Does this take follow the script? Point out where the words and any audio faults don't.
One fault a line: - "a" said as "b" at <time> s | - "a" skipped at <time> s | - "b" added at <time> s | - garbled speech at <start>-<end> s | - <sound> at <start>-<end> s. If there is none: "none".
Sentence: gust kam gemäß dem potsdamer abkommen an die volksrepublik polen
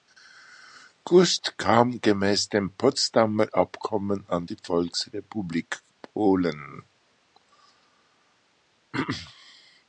none